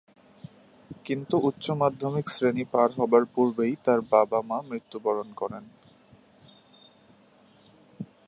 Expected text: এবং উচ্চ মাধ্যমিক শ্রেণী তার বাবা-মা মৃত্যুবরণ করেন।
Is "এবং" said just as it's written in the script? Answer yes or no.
no